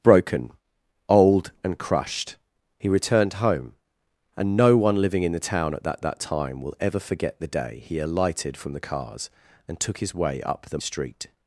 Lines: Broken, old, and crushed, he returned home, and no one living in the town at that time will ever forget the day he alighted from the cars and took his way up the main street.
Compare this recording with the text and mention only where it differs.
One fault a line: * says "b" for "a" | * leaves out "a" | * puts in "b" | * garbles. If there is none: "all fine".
* puts in "that"
* leaves out "main"